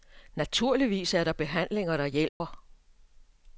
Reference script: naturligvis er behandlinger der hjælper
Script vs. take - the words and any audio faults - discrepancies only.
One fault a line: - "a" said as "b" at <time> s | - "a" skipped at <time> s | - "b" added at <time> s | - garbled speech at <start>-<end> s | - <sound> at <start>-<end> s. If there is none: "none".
- "der" added at 1.2 s
- dropout at 2.3-2.4 s